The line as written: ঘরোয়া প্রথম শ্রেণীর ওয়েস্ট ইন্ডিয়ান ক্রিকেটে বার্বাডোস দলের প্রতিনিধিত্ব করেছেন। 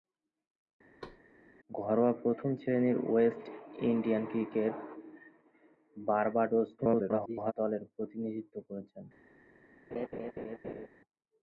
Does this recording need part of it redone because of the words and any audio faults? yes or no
yes